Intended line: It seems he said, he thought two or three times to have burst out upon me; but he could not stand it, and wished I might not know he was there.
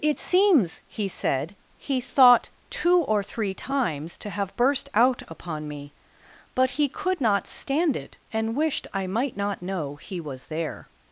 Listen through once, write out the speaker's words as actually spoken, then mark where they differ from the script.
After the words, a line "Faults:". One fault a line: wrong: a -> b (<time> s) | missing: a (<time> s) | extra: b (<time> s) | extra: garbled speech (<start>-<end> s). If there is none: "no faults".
It seems he said, he thought two or three times to have burst out upon me; but he could not stand it, and wished I might not know he was there.
Faults:
no faults